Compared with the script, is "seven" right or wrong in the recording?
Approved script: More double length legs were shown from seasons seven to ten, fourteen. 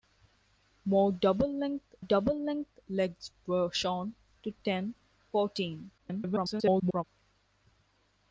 wrong